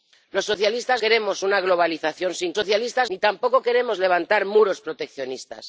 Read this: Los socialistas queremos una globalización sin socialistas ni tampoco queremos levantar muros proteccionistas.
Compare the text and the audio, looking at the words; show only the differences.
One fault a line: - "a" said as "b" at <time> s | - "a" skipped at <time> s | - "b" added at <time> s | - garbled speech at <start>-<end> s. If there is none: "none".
none